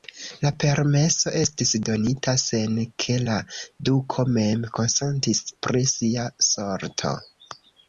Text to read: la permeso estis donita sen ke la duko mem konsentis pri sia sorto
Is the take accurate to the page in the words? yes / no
yes